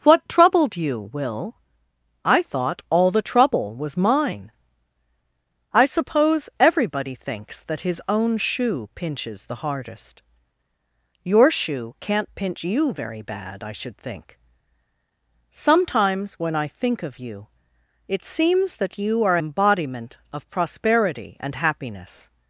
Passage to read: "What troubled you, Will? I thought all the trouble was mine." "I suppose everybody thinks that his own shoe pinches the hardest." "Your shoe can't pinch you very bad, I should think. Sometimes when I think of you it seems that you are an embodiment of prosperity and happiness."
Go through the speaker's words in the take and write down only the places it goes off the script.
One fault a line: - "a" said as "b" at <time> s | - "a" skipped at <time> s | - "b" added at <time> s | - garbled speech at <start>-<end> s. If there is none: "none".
- "an" skipped at 19.4 s